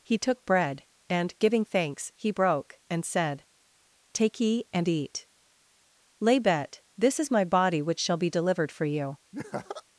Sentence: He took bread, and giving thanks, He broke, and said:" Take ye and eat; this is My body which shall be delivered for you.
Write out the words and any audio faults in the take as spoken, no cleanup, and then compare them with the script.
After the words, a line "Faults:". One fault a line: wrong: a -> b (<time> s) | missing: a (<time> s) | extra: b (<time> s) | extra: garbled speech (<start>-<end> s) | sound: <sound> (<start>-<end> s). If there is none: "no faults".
He took bread, and giving thanks, He broke, and said:" Take ye and eat; lay bet this is My body which shall be delivered for you.
Faults:
extra: lay bet (6.2 s)
sound: laugh (9.3-9.8 s)